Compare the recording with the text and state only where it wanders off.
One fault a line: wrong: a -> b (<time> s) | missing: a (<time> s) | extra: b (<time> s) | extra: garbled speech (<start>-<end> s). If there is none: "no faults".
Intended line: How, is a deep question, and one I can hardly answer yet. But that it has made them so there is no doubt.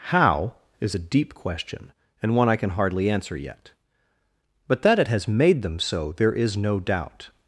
no faults